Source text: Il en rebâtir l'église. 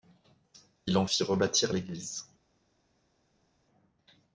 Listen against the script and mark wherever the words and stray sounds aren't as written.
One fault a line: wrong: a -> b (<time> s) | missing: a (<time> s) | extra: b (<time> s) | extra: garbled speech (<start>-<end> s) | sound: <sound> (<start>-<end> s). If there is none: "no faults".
extra: fit (1.0 s)